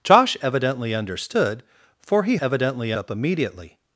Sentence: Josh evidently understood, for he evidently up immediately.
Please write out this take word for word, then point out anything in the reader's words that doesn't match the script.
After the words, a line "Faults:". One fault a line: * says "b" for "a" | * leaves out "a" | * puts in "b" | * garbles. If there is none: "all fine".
Josh evidently understood, for he evidently up immediately.
Faults:
all fine